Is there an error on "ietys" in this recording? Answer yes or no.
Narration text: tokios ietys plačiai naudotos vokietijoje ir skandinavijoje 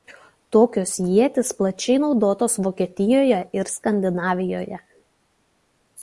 no